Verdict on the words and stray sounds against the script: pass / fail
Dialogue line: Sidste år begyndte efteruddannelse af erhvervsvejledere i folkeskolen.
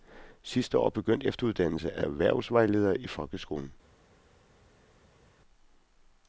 pass